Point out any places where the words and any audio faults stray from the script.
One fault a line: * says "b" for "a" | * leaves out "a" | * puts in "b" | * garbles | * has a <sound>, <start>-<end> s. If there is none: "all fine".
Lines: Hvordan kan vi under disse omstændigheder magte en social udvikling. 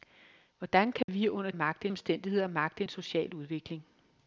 * has a dropout, 1.0-1.1 s
* says "magte" for "disse"